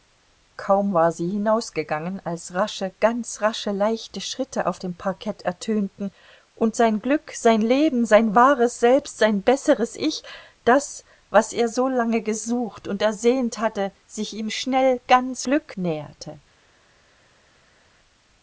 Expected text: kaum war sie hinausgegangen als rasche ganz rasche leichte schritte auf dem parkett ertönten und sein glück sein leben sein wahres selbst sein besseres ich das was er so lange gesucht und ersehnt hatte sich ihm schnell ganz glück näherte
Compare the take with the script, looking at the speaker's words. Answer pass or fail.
pass